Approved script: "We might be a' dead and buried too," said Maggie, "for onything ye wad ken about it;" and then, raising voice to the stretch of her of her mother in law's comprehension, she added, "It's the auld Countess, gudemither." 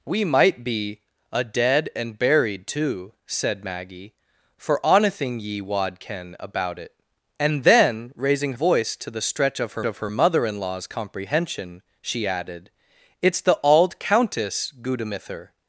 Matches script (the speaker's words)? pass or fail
pass